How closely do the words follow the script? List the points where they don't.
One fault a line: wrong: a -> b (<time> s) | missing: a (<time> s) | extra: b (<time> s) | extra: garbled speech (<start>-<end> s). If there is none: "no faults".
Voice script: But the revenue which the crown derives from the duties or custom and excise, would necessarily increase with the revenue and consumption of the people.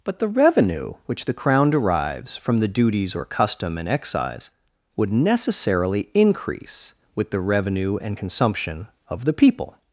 no faults